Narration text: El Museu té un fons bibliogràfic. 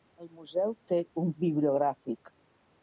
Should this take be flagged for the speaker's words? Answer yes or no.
yes